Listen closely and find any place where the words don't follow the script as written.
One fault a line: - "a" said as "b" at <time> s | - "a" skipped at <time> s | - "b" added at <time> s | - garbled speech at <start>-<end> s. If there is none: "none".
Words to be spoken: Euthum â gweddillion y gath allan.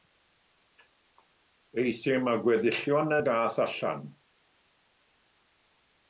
none